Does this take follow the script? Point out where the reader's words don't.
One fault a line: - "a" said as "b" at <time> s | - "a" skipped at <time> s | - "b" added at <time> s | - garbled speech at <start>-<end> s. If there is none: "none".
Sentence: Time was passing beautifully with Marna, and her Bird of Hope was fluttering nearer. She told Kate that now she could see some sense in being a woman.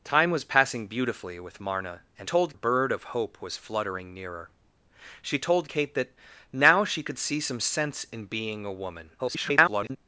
- "her" said as "told" at 2.2 s
- garbled speech at 9.2-10.0 s